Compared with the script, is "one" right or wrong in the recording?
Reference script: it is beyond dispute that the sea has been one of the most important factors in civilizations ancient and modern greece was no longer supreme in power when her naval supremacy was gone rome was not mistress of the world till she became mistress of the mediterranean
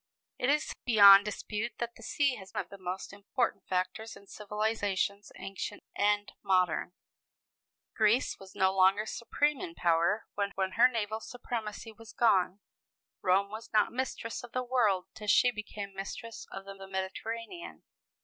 wrong